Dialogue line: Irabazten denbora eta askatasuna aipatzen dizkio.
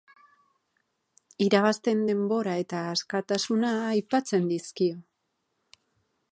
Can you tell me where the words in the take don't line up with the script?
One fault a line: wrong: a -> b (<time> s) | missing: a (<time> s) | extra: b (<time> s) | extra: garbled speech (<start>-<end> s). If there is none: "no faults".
no faults